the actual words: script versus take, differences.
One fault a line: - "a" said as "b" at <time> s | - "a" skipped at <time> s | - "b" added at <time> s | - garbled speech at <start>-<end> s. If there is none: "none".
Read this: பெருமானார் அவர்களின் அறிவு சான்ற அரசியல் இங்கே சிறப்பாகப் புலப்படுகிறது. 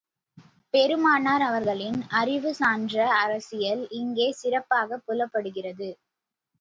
none